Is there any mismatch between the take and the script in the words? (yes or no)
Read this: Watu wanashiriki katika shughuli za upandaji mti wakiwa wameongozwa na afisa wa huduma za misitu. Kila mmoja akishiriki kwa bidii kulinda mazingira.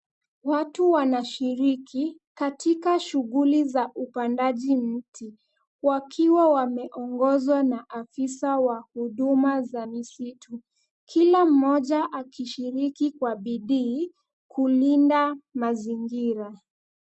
no